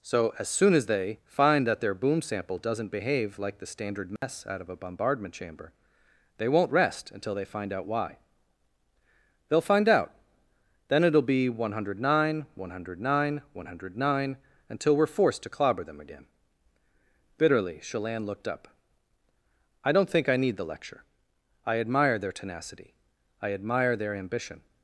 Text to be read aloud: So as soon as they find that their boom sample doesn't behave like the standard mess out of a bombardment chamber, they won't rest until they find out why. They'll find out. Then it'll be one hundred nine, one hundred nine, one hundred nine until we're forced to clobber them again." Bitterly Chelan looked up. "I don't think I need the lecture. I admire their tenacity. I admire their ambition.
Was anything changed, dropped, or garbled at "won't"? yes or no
no